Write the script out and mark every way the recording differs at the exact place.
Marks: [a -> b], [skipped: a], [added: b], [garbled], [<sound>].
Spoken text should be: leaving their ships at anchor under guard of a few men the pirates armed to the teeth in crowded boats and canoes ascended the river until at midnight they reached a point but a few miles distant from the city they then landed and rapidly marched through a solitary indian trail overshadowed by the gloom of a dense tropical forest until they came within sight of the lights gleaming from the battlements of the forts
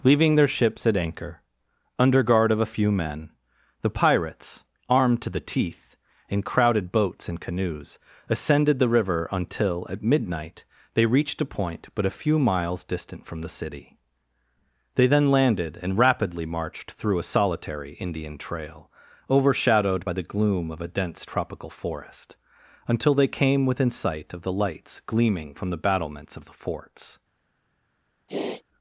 leaving their ships at anchor under guard of a few men the pirates armed to the teeth in crowded boats and canoes ascended the river until at midnight they reached a point but a few miles distant from the city they then landed and rapidly marched through a solitary indian trail overshadowed by the gloom of a dense tropical forest until they came within sight of the lights gleaming from the battlements of the forts [sniff]